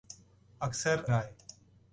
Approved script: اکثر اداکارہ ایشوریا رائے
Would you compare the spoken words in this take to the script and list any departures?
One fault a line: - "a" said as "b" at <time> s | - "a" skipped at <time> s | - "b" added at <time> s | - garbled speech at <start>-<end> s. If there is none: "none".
- "اداکارہ ایشوریا" skipped at 1.0 s